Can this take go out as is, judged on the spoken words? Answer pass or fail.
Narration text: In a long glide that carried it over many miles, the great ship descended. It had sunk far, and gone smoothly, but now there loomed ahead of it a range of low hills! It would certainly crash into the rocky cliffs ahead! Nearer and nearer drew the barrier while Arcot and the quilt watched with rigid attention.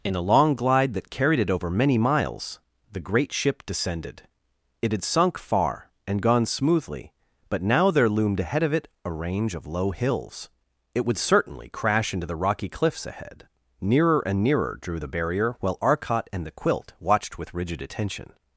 pass